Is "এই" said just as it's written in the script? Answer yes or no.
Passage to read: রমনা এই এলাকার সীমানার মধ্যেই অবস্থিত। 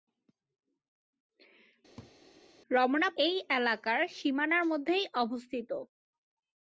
yes